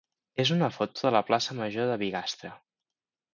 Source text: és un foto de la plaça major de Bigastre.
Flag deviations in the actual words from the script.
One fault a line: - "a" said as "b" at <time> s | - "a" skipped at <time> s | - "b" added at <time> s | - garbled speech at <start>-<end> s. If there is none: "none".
- "un" said as "una" at 0.5 s